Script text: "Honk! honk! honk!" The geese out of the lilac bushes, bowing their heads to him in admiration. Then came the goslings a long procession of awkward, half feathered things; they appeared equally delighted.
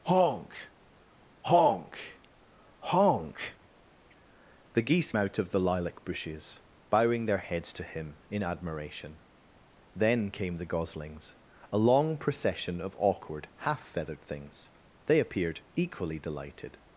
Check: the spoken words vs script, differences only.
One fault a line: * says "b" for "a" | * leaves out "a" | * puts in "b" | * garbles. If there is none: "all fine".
all fine